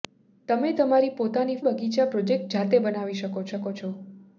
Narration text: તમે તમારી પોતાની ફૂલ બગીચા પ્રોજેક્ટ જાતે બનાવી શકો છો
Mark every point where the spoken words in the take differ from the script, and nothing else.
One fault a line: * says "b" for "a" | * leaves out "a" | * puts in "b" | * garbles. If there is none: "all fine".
* leaves out "ફૂલ"
* puts in "શકો"